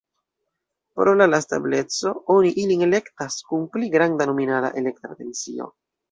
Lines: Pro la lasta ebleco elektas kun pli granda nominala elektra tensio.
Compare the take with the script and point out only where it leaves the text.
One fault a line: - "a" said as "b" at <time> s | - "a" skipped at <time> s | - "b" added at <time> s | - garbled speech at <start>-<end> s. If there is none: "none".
- "oni ilin" added at 2.4 s